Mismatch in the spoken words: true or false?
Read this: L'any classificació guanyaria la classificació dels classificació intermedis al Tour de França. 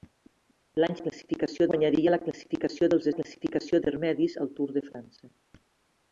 false